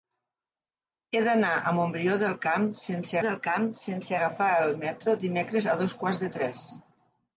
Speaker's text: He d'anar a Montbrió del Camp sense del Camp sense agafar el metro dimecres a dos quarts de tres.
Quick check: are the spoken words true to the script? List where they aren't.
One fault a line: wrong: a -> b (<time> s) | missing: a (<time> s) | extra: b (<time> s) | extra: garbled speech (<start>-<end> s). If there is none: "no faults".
no faults